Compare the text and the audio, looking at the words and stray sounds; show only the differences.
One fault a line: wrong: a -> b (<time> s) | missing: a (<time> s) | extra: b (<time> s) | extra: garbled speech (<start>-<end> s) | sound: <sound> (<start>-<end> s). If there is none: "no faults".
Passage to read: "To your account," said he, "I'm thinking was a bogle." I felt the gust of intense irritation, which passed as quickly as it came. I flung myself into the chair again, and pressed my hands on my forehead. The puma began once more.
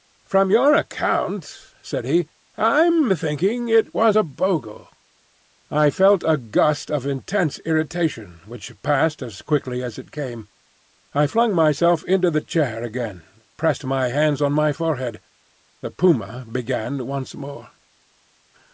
wrong: To -> From (0.2 s)
extra: it (3.7 s)
wrong: the -> a (6.3 s)